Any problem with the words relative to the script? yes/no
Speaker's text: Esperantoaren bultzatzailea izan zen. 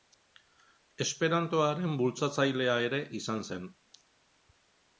yes